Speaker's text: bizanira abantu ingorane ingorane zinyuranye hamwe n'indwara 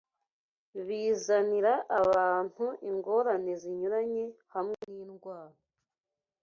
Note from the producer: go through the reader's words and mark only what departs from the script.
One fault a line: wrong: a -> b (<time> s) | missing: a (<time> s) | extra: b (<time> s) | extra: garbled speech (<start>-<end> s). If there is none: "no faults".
missing: ingorane (3.5 s)